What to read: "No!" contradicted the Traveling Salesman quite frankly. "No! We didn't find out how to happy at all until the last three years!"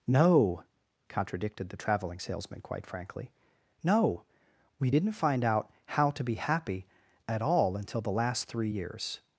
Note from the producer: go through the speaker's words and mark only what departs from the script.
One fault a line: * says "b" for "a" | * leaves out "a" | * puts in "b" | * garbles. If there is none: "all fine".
* puts in "be"